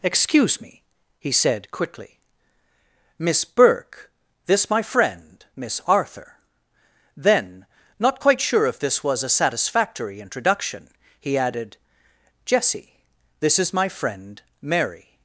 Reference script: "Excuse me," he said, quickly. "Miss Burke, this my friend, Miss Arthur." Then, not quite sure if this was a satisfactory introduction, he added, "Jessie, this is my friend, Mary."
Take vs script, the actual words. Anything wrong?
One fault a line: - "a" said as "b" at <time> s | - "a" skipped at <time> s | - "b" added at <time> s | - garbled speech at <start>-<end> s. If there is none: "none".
none